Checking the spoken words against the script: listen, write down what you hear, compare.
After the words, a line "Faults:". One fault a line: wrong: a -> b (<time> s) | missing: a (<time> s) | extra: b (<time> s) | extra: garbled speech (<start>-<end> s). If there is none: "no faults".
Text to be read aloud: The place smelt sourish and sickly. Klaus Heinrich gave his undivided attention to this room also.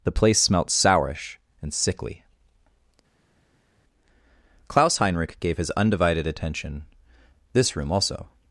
The place smelt sourish and sickly. Klaus Heinrich gave his undivided attention this room also.
Faults:
missing: to (6.9 s)